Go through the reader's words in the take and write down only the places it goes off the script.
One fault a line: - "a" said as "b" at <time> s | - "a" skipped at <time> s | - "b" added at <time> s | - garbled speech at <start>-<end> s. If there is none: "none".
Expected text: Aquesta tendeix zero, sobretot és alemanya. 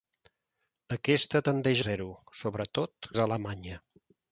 none